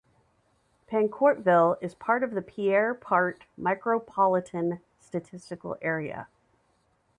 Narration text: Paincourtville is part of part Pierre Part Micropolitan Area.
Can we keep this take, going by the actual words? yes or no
no